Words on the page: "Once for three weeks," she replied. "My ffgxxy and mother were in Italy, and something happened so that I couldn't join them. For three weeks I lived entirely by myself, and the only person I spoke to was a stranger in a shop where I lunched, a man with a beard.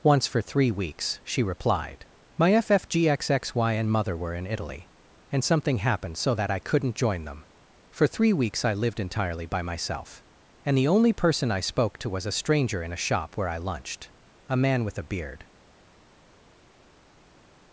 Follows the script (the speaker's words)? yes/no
yes